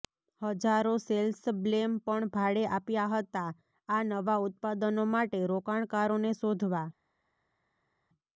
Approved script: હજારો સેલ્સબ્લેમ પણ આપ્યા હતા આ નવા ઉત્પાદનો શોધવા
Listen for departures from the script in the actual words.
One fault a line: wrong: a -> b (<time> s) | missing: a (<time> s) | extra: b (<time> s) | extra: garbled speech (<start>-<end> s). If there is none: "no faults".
extra: ભાડે (2.4 s)
extra: માટે રોકાણકારોને (5.1 s)